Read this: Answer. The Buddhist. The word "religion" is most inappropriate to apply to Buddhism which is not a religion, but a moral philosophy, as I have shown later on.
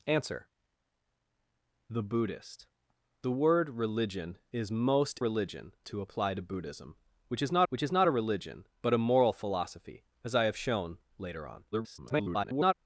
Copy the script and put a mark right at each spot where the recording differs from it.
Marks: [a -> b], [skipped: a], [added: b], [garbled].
Answer. The Buddhist. The word "religion" is most [inappropriate -> religion] to apply to Buddhism which is not [added: which is not] a religion, but a moral philosophy, as I have shown later on. [garbled]